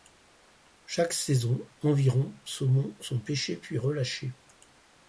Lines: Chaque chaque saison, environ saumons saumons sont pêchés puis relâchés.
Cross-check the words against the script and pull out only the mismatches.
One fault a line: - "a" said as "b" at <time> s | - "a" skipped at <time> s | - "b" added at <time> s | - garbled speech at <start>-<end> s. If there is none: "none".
- "chaque" skipped at 1.1 s
- "saumons" skipped at 3.0 s